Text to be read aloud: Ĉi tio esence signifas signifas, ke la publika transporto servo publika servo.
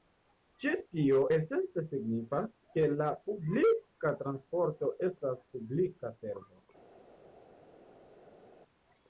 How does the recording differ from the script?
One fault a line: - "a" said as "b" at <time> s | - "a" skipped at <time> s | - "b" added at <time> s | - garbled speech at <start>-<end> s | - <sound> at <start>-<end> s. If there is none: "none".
- "signifas" skipped at 2.5 s
- "servo" said as "estas" at 5.1 s